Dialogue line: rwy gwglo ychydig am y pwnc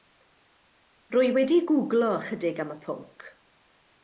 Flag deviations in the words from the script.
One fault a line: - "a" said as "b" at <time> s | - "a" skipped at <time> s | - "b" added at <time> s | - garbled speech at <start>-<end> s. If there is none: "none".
- "wedi" added at 1.4 s